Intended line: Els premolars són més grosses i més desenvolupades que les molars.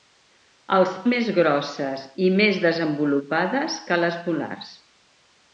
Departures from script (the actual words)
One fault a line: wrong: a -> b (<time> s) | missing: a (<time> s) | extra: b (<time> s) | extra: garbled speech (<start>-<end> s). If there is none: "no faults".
missing: premolars són (0.9 s)